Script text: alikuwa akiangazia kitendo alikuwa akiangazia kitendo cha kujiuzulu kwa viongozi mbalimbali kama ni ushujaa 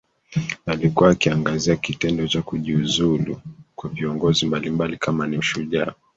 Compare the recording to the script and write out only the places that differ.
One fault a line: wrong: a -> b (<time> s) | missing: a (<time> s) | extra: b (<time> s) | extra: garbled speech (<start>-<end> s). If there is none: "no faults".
missing: alikuwa akiangazia kitendo (2.3 s)